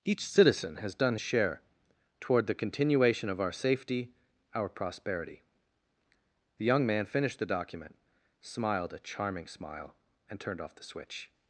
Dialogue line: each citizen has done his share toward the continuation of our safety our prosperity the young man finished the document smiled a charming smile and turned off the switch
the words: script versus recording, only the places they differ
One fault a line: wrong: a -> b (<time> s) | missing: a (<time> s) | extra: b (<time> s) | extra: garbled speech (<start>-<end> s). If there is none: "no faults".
missing: his (1.1 s)